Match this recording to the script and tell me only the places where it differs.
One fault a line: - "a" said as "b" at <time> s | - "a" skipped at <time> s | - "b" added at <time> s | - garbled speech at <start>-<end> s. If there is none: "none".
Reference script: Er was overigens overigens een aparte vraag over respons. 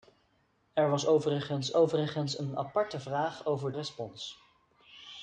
none